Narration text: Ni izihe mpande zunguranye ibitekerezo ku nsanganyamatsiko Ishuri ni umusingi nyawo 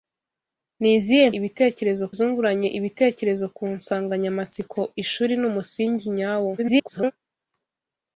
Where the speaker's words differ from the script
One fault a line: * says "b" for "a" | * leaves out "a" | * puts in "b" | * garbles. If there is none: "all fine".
* says "ibitekerezo" for "mpande"
* garbles